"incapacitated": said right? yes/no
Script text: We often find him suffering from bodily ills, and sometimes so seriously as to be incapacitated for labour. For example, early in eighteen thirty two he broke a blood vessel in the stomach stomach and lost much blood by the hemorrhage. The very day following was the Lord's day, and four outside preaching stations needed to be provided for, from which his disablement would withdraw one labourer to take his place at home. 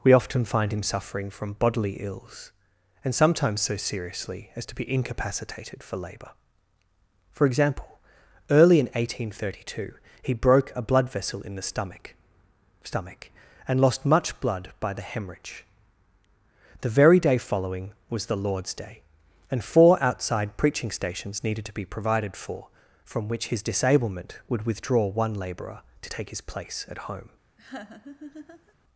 yes